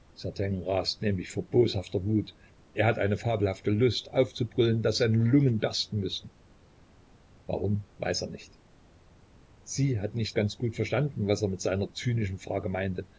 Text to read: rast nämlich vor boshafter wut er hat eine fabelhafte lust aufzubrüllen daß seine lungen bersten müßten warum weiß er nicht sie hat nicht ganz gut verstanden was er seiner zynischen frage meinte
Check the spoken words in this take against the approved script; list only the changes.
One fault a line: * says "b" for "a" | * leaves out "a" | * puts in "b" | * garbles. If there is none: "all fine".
* puts in "mit"